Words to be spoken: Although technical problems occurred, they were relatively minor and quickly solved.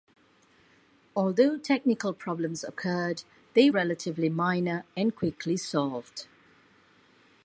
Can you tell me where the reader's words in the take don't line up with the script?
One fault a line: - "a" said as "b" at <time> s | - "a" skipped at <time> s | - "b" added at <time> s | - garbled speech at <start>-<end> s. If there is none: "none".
- "were" skipped at 3.7 s